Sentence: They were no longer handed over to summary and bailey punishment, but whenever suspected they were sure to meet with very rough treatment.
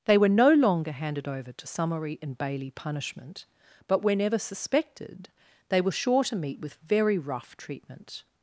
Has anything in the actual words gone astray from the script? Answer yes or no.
no